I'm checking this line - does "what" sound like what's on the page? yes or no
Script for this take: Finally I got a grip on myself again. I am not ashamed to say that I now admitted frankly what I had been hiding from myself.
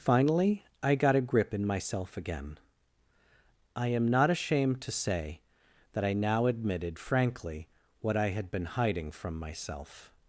yes